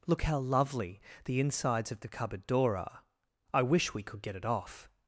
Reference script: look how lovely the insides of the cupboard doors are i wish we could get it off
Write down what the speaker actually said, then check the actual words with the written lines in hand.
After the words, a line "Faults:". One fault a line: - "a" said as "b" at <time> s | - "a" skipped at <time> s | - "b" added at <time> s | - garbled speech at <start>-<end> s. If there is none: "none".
look how lovely the insides of the cupboard door are i wish we could get it off
Faults:
- "doors" said as "door" at 2.5 s